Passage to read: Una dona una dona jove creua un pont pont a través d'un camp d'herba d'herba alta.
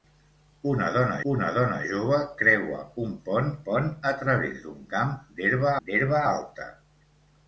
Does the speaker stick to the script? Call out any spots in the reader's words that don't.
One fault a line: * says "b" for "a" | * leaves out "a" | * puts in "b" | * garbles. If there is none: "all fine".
all fine